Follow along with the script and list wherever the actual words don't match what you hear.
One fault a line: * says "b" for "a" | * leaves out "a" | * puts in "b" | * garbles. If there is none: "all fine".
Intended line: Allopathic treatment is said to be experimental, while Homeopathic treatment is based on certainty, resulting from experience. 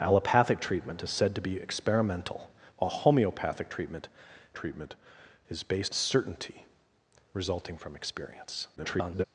* puts in "treatment"
* leaves out "on"
* garbles